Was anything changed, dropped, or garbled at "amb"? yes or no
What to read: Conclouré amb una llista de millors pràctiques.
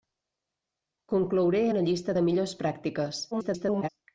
yes